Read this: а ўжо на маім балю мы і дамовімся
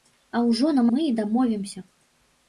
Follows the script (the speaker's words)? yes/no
no